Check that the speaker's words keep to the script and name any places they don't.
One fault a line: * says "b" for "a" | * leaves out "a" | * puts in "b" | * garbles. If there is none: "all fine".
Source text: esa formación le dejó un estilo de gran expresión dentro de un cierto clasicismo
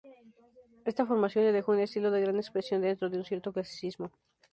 * says "esta" for "esa"